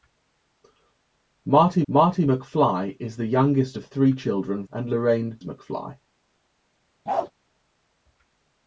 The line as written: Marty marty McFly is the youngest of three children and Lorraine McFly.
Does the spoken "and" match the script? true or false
true